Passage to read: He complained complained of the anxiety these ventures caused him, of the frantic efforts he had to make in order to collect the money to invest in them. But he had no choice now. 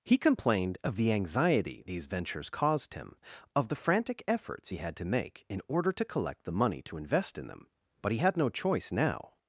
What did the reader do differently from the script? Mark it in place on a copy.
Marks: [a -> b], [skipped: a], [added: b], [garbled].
He complained [skipped: complained] of the anxiety these ventures caused him, of the frantic efforts he had to make in order to collect the money to invest in them. But he had no choice now.